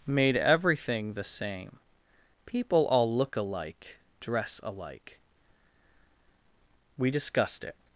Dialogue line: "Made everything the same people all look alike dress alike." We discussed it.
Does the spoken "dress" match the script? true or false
true